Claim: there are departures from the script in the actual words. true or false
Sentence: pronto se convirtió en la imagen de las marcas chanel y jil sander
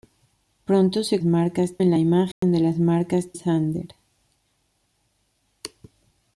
true